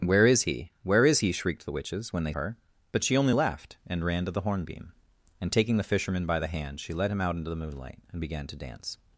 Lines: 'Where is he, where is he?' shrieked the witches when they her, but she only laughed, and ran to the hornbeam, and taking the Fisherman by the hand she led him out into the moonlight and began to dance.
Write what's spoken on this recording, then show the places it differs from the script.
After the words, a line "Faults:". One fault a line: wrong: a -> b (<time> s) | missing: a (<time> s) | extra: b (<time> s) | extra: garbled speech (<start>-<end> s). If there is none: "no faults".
'Where is he, where is he?' shrieked the witches when they her, but she only laughed, and ran to the hornbeam, and taking the Fisherman by the hand she led him out into the moonlight and began to dance.
Faults:
no faults